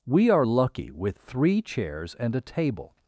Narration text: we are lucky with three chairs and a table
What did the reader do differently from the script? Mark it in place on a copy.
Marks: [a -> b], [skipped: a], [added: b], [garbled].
we are lucky with three chairs and a table